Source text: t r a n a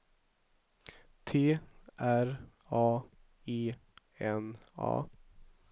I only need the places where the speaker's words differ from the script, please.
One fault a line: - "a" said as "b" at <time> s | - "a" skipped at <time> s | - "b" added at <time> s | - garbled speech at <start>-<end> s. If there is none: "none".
- "e" added at 3.5 s